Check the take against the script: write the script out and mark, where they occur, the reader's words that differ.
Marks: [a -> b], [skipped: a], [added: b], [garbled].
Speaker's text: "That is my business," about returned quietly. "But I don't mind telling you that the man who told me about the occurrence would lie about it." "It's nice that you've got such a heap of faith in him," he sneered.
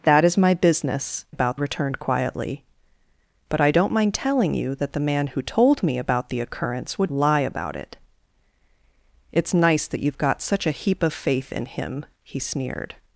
"That is my business," about returned quietly. "But I don't mind telling you that the man who told me about the occurrence would lie about it." "It's nice that you've got such a heap of faith in him," he sneered.